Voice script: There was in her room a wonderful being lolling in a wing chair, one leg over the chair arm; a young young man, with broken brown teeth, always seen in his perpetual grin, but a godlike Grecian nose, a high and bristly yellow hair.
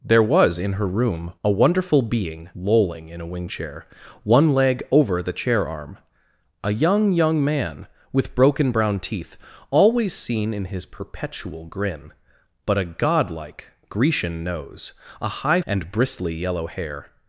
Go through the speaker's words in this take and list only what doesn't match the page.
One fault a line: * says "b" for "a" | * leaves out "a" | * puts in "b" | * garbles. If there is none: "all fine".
all fine